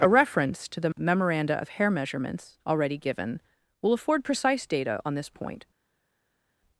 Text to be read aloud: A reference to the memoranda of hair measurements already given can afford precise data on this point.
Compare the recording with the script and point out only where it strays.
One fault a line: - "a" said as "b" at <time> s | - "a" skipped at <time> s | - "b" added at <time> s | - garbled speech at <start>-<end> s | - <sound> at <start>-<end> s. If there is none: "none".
- "can" said as "will" at 3.8 s